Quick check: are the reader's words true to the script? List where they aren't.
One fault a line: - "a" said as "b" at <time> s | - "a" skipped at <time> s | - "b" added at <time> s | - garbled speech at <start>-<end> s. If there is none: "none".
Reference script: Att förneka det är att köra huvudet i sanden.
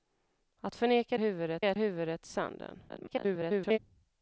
- "det" said as "huvudet" at 1.2 s
- "köra" skipped at 1.8 s
- garbled speech at 2.9-3.8 s